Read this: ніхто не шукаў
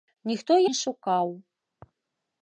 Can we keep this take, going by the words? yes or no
yes